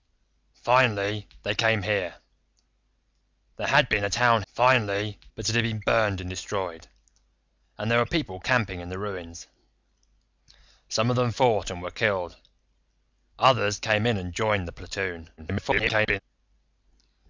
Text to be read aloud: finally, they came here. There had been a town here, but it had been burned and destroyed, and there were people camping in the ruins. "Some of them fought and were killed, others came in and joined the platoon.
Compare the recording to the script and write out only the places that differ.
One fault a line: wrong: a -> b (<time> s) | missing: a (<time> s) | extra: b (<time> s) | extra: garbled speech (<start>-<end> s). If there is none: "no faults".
wrong: here -> finally (4.5 s)
extra: garbled speech (15.4-16.2 s)